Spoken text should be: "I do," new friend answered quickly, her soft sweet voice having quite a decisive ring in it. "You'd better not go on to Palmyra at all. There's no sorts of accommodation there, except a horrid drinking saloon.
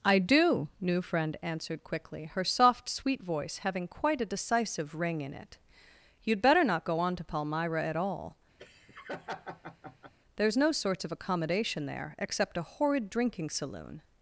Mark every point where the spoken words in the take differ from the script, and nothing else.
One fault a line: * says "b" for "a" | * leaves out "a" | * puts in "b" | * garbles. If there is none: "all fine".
all fine